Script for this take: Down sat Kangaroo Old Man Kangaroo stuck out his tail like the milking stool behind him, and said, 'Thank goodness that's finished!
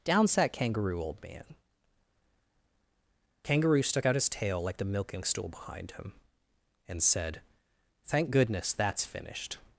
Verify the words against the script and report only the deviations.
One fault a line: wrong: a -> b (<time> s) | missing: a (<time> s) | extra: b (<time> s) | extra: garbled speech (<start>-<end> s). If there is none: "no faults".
no faults